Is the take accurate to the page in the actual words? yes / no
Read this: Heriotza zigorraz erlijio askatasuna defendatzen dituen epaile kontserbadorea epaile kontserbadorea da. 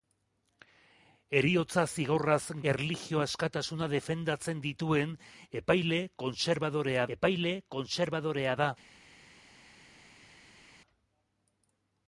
yes